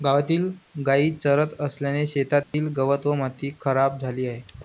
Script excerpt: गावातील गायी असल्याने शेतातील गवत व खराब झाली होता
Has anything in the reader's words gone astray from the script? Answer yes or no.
yes